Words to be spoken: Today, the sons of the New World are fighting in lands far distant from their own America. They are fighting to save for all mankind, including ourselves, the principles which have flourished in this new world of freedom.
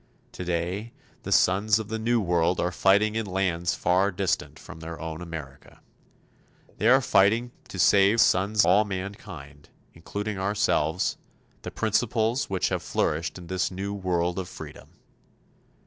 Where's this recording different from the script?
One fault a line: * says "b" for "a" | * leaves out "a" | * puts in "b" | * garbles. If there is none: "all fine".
* says "sons" for "for"